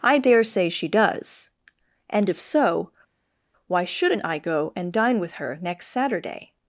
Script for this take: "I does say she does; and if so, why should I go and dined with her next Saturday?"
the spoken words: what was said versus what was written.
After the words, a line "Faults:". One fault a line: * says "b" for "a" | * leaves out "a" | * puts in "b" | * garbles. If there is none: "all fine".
"I dare say she does; and if so, why shouldn't I go and dine with her next Saturday?"
Faults:
* says "dare" for "does"
* says "shouldn't" for "should"
* says "dine" for "dined"